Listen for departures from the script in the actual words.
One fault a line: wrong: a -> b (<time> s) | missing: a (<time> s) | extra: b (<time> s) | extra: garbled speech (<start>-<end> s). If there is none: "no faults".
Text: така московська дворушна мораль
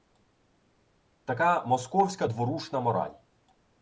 no faults